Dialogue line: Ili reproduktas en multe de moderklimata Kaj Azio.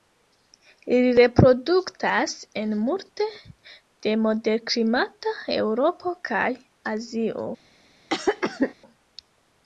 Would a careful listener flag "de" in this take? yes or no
no